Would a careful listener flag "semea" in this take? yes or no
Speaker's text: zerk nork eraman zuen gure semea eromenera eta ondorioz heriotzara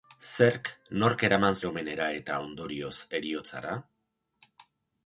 yes